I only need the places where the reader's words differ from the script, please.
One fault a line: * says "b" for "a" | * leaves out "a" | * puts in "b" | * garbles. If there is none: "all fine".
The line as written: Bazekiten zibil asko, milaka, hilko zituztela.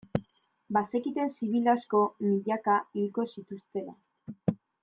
all fine